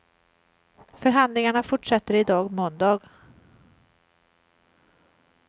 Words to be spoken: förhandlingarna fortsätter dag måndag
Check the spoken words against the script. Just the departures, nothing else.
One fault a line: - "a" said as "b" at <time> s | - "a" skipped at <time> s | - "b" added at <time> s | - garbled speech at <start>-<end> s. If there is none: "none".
- "i" added at 2.1 s